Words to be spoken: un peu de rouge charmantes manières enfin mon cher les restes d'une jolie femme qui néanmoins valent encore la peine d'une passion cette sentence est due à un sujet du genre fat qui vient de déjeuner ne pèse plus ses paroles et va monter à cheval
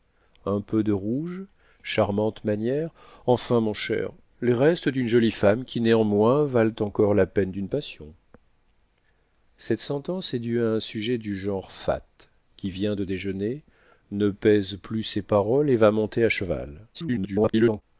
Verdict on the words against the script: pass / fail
fail